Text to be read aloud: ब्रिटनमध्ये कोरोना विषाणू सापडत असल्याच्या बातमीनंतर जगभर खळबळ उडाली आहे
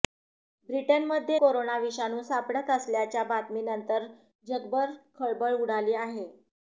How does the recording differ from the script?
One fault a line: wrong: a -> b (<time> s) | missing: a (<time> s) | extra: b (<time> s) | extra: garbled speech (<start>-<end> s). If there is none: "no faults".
no faults